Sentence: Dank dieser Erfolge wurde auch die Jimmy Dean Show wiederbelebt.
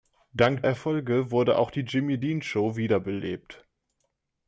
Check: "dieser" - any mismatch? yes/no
yes